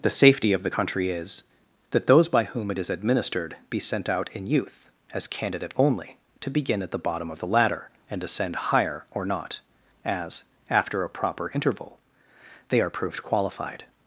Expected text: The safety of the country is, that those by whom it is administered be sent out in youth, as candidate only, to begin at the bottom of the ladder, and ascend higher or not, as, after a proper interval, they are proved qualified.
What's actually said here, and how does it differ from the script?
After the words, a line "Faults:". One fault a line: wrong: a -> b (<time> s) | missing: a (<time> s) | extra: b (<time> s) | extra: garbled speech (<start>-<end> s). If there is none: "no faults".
The safety of the country is, that those by whom it is administered be sent out in youth, as candidate only, to begin at the bottom of the ladder, and ascend higher or not, as, after a proper interval, they are proved qualified.
Faults:
no faults